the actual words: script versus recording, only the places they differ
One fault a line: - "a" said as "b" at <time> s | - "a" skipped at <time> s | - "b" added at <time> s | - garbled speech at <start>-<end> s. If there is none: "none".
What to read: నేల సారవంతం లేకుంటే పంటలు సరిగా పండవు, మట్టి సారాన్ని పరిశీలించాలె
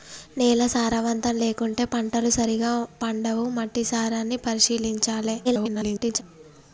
- garbled speech at 5.4-6.2 s